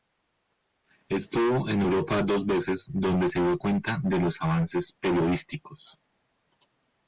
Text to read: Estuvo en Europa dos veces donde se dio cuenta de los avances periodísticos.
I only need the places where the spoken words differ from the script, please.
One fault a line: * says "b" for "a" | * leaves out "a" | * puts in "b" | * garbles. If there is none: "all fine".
all fine